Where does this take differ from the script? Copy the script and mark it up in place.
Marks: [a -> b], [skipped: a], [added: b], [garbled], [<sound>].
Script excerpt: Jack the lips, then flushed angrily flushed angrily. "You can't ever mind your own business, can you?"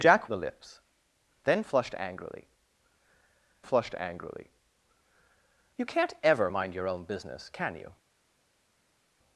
Jack the lips, then flushed angrily flushed angrily. "You can't ever mind your own business, can you?"